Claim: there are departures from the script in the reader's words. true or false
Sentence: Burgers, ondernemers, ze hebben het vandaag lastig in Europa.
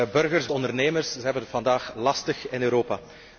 false